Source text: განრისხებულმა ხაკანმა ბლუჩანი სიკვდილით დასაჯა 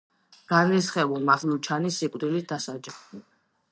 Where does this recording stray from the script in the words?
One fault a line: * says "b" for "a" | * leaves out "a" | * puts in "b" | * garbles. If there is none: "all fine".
* leaves out "ხაკანმა"